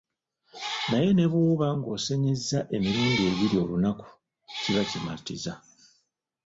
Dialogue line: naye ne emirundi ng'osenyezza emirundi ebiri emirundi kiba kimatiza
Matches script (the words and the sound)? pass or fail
fail